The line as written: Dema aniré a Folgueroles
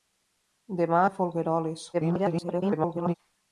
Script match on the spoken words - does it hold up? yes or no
no